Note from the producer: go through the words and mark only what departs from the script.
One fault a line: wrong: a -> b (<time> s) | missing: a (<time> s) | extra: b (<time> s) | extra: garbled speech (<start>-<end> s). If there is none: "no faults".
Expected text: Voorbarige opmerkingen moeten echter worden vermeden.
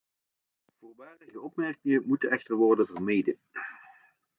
no faults